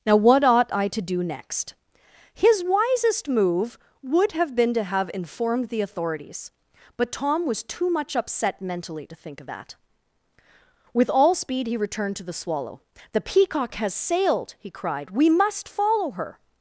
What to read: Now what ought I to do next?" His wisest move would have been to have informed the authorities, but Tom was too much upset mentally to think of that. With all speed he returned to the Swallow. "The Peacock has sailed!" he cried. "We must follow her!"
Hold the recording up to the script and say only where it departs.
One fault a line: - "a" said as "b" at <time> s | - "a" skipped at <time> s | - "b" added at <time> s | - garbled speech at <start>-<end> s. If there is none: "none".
none